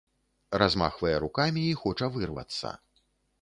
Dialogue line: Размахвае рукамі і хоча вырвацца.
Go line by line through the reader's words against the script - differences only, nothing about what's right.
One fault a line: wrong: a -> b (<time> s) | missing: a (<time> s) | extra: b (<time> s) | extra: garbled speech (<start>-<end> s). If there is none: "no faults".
no faults